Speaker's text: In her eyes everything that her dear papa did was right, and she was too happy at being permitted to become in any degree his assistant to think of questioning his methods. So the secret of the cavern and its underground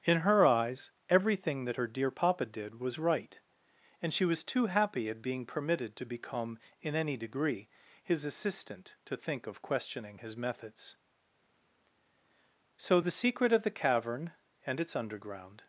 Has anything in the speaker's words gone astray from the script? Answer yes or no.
no